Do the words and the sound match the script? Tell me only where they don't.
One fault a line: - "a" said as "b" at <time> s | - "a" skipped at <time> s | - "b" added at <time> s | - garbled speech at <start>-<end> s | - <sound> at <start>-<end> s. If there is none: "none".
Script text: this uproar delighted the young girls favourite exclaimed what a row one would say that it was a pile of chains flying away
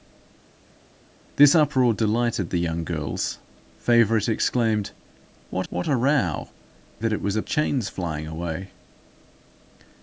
- "what" added at 5.7 s
- "one would say" skipped at 6.5 s
- "pile of" skipped at 7.4 s